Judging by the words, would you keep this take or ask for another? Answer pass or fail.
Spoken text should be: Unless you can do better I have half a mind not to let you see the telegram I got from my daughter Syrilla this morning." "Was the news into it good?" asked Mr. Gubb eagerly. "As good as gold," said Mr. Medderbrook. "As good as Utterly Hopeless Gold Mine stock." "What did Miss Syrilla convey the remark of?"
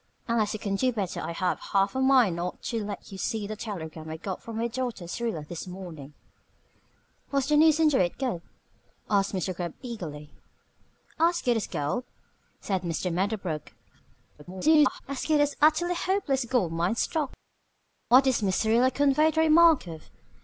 fail